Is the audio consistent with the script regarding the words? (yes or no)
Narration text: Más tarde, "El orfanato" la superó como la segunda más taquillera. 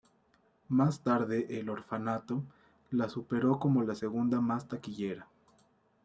yes